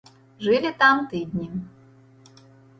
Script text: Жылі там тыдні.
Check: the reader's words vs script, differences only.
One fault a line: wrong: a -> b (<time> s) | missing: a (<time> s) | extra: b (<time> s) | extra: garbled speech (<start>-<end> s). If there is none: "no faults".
no faults